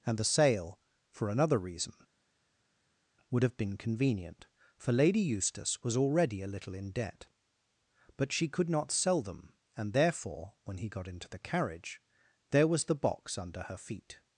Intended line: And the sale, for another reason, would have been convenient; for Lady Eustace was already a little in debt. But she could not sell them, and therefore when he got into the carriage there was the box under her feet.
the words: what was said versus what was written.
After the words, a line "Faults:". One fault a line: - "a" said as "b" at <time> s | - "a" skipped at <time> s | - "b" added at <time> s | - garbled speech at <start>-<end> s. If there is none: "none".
And the sale, for another reason, would have been convenient; for Lady Eustace was already a little in debt. But she could not sell them, and therefore when he got into the carriage there was the box under her feet.
Faults:
none